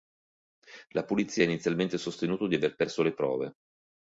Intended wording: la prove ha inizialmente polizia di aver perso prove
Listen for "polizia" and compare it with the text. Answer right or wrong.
wrong